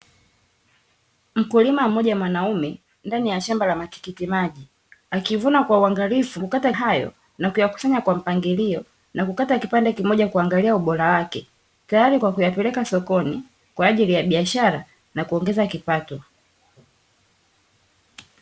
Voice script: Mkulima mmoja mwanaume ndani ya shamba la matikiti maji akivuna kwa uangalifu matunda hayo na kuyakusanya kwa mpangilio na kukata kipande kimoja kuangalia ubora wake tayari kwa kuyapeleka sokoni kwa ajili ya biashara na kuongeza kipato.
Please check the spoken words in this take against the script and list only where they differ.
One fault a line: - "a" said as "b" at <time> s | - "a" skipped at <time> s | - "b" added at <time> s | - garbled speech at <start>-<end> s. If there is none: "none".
- "matunda" said as "kukata" at 6.4 s